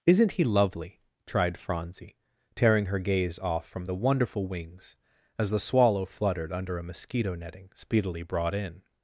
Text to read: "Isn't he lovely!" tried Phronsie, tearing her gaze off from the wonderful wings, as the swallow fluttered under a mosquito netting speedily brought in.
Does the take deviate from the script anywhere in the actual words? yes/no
no